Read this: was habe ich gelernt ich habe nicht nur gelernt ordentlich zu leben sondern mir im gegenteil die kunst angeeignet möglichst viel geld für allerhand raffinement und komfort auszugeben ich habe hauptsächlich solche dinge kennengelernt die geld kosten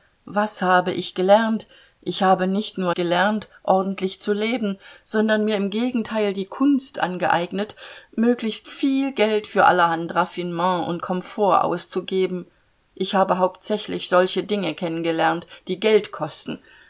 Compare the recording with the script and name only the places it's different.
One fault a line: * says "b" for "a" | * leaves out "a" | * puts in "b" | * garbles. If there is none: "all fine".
all fine